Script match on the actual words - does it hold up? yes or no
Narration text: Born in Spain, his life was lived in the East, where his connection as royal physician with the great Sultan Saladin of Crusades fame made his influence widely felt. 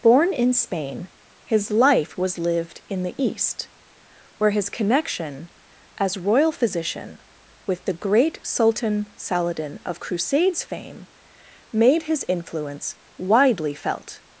yes